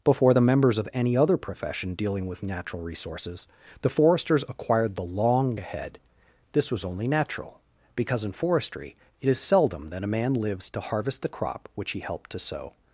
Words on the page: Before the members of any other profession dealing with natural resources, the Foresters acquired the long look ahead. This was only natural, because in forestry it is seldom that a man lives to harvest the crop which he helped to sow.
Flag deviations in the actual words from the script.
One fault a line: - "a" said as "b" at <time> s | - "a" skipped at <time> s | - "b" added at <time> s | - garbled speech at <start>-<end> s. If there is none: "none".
- "look" skipped at 5.6 s